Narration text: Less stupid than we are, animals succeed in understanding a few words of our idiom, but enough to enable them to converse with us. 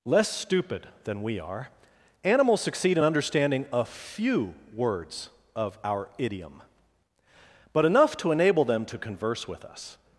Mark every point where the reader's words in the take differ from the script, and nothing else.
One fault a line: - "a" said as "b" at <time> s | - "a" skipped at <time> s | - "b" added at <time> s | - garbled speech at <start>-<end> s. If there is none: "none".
none